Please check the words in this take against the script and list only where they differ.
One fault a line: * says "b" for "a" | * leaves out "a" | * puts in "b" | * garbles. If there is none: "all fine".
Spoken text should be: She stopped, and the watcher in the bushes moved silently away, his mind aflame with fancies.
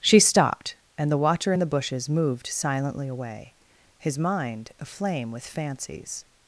all fine